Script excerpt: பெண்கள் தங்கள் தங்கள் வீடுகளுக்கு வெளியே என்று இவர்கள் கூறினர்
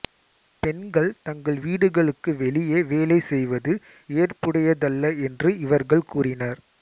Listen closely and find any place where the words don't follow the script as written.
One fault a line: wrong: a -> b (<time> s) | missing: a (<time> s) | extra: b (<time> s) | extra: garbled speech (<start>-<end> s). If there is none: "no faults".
missing: தங்கள் (1.6 s)
extra: வேலை செய்வது ஏற்புடையதல்ல (2.9 s)